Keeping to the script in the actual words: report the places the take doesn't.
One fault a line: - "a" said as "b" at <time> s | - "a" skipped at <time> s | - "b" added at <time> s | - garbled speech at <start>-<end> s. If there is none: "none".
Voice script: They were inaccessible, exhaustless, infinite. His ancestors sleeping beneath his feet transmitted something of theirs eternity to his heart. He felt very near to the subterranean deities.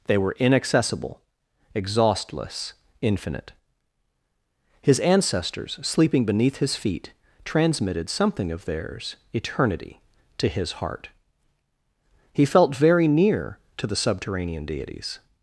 none